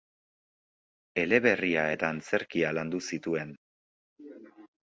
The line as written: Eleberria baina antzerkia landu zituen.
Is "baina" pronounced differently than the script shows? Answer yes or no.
yes